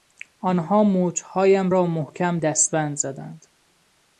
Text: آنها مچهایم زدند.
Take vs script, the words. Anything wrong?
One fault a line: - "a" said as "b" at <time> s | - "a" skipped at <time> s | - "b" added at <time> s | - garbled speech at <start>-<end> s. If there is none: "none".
- "را محکم دستبند" added at 1.7 s